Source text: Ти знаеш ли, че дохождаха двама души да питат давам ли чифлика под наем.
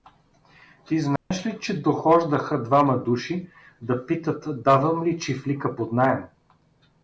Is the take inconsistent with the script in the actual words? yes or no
no